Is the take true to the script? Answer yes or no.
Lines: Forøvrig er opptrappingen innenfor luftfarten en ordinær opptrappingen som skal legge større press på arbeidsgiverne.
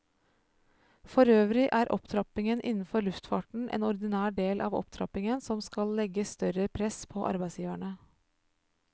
no